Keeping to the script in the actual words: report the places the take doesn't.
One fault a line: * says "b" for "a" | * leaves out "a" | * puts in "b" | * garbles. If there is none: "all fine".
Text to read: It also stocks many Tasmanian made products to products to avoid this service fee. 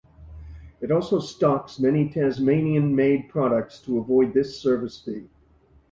* leaves out "products to"